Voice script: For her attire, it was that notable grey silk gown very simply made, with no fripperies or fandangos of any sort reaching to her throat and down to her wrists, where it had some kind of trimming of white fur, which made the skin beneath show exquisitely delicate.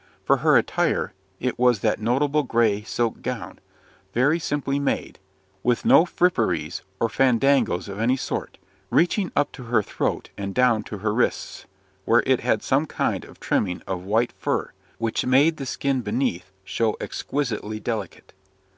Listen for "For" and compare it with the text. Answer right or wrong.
right